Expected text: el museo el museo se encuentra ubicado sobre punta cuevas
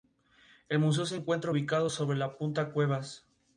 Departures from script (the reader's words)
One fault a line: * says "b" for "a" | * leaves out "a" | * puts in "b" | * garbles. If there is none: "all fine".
* leaves out "el museo"
* puts in "la"